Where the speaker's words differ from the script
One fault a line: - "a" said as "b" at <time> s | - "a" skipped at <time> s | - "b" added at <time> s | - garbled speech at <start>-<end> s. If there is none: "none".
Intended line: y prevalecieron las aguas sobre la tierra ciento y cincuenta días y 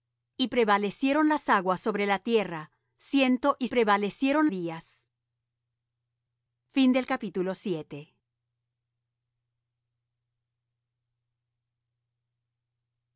- "cincuenta" said as "prevalecieron" at 3.7 s